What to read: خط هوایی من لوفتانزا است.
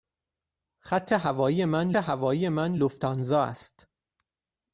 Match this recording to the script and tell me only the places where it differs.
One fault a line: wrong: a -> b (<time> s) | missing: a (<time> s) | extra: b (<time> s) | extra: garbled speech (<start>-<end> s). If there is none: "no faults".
extra: هوایی من (1.9 s)